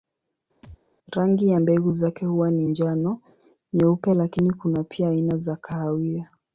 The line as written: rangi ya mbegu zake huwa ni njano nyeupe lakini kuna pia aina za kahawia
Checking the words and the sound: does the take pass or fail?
fail